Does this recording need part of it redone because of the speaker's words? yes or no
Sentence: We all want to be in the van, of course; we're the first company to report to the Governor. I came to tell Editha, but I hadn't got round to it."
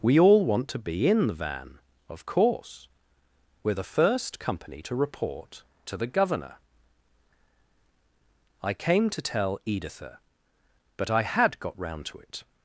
yes